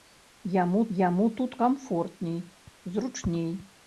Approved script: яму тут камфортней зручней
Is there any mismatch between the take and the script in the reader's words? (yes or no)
yes